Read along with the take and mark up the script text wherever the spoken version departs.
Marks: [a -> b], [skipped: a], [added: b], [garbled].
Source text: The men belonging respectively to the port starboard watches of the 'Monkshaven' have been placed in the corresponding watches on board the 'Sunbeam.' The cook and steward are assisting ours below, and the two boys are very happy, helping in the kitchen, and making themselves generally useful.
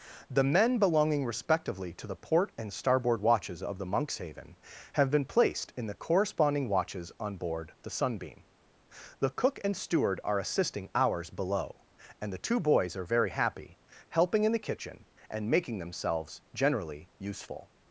The men belonging respectively to the port [added: and] starboard watches of the 'Monkshaven' have been placed in the corresponding watches on board the 'Sunbeam.' The cook and steward are assisting ours below, and the two boys are very happy, helping in the kitchen, and making themselves generally useful.